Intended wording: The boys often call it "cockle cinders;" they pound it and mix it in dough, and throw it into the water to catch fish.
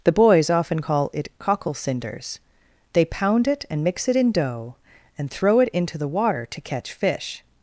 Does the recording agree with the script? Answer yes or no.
yes